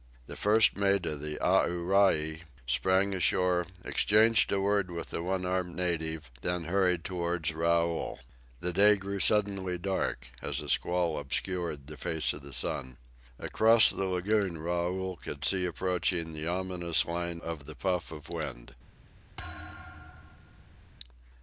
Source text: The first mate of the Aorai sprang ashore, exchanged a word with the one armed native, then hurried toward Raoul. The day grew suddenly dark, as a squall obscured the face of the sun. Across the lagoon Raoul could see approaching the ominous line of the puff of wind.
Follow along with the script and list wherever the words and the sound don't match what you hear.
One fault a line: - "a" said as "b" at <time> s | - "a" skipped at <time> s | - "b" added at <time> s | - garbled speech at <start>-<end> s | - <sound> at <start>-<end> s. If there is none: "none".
- thud at 19.4-20.9 s